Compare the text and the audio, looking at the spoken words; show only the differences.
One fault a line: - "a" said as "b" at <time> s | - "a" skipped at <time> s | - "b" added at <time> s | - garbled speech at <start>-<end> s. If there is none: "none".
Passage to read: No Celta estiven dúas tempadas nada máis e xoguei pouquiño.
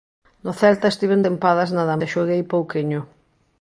- "dúas" skipped at 1.2 s
- "máis" skipped at 1.9 s